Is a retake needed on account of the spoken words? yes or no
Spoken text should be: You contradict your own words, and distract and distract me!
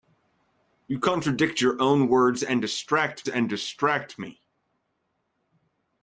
no